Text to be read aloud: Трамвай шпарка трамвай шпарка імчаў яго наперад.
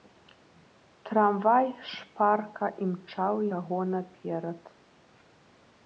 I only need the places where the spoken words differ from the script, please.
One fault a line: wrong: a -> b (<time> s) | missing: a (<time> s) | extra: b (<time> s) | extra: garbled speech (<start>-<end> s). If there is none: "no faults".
missing: трамвай шпарка (2.6 s)